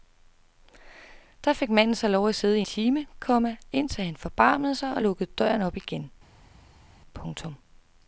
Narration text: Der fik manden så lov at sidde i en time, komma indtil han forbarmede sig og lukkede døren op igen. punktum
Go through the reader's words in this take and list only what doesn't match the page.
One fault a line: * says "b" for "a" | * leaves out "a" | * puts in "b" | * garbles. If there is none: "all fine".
* leaves out "en"